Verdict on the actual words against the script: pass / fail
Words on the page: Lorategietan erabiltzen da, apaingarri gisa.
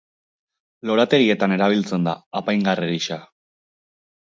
pass